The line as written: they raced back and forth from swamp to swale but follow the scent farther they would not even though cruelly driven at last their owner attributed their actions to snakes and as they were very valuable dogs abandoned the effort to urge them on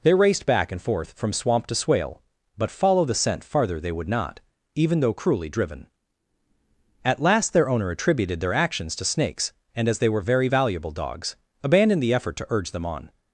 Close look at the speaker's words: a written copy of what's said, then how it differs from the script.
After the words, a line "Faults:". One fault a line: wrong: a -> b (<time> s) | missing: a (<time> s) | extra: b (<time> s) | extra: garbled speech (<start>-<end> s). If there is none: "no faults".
they raced back and forth from swamp to swale but follow the scent farther they would not even though cruelly driven at last their owner attributed their actions to snakes and as they were very valuable dogs abandoned the effort to urge them on
Faults:
no faults